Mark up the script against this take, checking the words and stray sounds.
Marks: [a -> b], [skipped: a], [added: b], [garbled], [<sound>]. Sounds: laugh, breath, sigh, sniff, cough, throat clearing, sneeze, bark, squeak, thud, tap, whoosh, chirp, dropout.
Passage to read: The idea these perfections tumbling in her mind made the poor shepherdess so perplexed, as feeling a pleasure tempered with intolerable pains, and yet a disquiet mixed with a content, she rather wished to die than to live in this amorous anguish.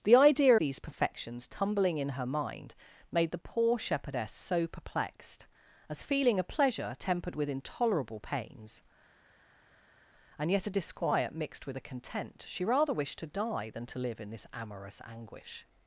The idea these perfections tumbling in her mind made the poor shepherdess so perplexed, as feeling a pleasure tempered with intolerable pains, and yet a disquiet mixed with a content, she rather wished to die than to live in this amorous anguish.